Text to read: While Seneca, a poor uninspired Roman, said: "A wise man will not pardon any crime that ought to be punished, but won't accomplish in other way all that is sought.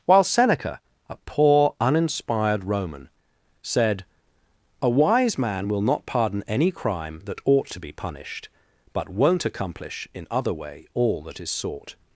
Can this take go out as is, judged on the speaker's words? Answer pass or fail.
pass